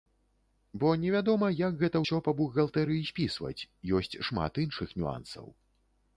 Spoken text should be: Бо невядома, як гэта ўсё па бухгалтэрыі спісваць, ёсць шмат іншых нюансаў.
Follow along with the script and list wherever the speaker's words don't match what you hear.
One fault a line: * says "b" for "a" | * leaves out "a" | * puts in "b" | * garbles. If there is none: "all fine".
all fine